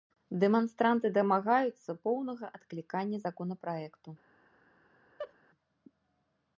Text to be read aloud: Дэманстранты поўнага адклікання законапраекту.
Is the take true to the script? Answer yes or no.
no